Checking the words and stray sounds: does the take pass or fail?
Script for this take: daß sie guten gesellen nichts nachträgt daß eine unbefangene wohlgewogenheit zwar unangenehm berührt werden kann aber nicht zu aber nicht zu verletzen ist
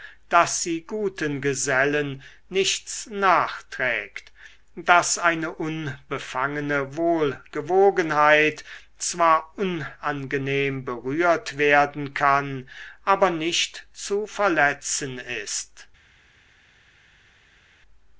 fail